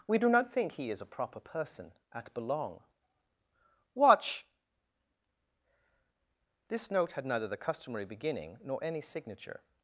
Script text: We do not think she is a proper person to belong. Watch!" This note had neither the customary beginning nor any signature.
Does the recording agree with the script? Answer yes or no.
no